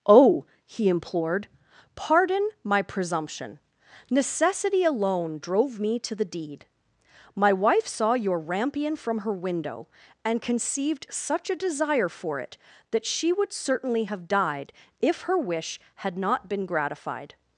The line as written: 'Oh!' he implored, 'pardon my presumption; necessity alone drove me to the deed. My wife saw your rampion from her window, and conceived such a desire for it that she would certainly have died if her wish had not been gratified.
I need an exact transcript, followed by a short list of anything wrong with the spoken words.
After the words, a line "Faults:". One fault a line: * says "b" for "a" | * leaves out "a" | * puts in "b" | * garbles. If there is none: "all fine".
'Oh!' he implored, 'pardon my presumption; necessity alone drove me to the deed. My wife saw your rampion from her window, and conceived such a desire for it that she would certainly have died if her wish had not been gratified.
Faults:
all fine